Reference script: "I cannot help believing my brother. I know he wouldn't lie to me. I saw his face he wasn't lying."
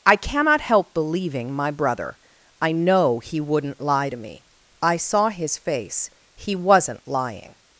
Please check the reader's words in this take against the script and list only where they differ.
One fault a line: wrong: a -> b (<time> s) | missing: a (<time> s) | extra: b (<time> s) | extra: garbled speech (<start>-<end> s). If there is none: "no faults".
no faults